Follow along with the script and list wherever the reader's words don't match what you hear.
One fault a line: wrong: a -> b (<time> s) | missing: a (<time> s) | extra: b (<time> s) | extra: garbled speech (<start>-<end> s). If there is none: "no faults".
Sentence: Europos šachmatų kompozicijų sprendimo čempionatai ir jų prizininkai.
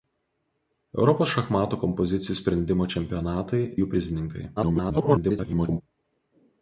missing: ir (3.6 s)
extra: garbled speech (4.6-5.8 s)